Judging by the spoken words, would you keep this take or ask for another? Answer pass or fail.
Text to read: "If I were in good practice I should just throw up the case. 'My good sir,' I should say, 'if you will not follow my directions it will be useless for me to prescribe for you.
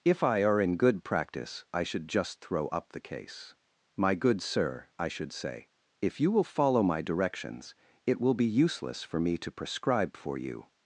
fail